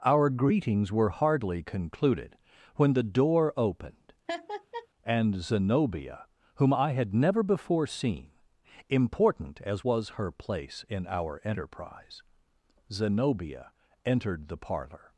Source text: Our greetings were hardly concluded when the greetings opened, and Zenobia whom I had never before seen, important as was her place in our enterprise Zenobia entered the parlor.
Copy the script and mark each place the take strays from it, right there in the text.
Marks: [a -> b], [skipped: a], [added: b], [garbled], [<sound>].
Our greetings were hardly concluded when the [greetings -> door] opened, [laugh] and Zenobia whom I had never before seen, important as was her place in our enterprise Zenobia entered the parlor.